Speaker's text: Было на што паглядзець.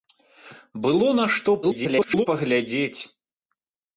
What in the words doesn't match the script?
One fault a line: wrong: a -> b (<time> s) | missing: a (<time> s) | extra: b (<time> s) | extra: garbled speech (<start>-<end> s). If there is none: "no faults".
extra: garbled speech (1.6-2.3 s)